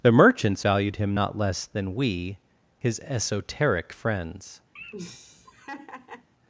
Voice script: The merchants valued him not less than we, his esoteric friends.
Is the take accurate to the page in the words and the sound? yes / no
no